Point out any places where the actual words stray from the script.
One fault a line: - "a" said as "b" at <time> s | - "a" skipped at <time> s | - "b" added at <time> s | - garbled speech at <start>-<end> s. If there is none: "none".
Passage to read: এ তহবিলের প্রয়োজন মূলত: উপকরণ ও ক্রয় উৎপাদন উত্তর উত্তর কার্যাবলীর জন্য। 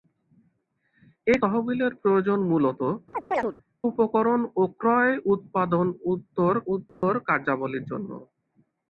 none